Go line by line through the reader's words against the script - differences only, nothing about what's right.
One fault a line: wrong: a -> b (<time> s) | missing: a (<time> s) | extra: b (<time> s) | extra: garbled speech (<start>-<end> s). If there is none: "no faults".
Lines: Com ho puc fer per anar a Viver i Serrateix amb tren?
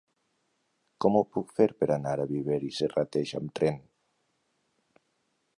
no faults